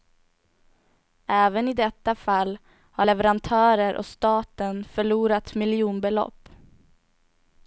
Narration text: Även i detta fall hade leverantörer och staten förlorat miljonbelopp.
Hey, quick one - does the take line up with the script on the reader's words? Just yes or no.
no